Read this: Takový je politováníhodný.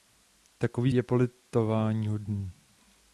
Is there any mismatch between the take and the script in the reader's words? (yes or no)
no